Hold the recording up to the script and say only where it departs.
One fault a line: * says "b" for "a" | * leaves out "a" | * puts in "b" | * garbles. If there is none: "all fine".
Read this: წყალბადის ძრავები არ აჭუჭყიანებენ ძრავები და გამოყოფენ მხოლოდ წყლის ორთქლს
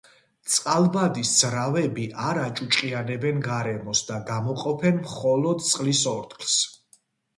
* says "გარემოს" for "ძრავები"